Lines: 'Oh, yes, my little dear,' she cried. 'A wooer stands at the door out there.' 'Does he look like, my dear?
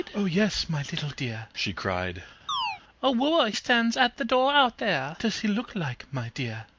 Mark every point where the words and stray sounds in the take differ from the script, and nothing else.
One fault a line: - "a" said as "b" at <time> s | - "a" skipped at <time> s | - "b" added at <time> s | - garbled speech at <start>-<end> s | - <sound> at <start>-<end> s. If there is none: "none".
- chirp at 2.5-2.8 s